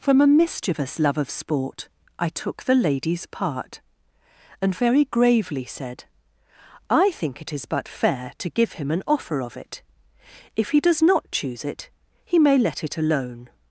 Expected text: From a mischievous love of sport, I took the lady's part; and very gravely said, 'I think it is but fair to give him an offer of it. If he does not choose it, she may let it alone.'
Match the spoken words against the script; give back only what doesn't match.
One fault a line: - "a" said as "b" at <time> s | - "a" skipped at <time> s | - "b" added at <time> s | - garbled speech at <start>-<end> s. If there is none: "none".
- "she" said as "he" at 12.2 s